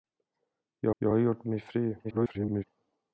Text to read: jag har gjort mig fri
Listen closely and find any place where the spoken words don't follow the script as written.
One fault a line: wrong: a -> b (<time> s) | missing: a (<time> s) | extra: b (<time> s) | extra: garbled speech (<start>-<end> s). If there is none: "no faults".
extra: jag (1.0 s)
extra: garbled speech (2.0-2.6 s)